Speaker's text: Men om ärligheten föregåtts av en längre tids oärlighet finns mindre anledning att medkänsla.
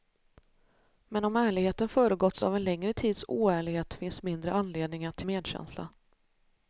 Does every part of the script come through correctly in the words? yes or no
yes